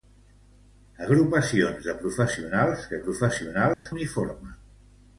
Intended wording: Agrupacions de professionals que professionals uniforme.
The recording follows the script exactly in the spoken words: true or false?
true